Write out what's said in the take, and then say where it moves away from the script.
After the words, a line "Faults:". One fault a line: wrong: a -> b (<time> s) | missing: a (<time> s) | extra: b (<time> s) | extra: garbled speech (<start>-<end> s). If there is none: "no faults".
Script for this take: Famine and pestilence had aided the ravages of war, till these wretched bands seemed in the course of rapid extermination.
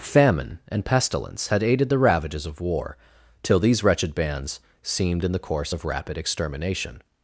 Famine and pestilence had aided the ravages of war, till these wretched bands seemed in the course of rapid extermination.
Faults:
no faults